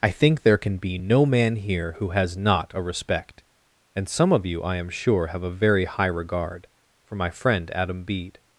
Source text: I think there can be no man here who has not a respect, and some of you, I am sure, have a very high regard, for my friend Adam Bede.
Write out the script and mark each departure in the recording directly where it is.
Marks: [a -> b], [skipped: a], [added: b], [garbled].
I think there can be no man here who has not a respect, and some of you, I am sure, have a very high regard, for my friend Adam Bede.